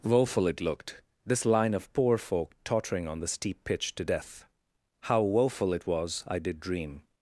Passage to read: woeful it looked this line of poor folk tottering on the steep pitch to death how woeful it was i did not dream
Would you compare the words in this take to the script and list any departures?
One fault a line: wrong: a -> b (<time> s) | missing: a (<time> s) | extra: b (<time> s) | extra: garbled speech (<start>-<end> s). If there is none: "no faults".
missing: not (6.6 s)